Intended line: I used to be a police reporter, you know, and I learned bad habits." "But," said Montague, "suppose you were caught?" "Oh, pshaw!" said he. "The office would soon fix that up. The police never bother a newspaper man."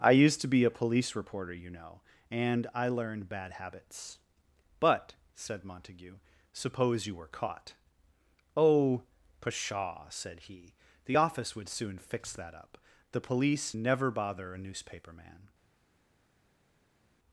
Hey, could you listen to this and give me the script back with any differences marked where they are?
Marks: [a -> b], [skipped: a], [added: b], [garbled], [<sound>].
I used to be a police reporter, you know, and I learned bad habits." "But," said Montague, "suppose you were caught?" "Oh, pshaw!" said he. "The office would soon fix that up. The police never bother a newspaper man."